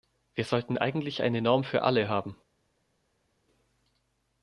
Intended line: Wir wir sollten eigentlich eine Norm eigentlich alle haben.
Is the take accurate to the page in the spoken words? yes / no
no